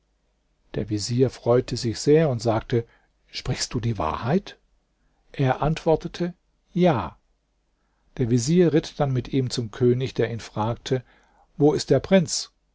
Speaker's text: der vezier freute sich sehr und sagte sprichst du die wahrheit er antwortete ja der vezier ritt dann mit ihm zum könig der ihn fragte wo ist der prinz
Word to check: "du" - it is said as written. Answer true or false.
true